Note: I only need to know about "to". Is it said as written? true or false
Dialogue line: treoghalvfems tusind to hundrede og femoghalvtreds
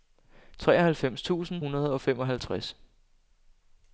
false